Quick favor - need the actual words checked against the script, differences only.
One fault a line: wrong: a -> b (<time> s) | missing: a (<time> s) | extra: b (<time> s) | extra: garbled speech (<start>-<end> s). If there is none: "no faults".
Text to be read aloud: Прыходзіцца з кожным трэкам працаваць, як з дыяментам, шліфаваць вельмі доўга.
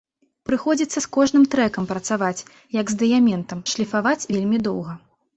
no faults